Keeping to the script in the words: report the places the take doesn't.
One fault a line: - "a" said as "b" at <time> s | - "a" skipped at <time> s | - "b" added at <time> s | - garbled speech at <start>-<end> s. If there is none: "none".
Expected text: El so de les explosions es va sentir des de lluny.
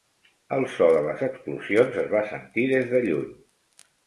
none